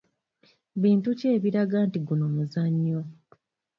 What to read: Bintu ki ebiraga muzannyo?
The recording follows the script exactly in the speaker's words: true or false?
false